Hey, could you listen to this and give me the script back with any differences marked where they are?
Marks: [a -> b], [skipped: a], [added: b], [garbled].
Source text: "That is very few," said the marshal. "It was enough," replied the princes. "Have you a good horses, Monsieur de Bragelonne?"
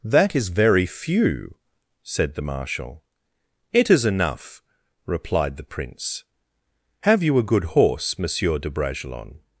"That is very few," said the marshal. "It [was -> is] enough," replied the [princes. -> prince] "Have you a good [horses, -> horse] Monsieur de Bragelonne?"